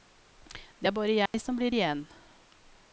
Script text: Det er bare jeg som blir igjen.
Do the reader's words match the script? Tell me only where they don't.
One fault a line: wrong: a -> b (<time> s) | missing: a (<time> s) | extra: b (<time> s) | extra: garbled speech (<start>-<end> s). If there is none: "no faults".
no faults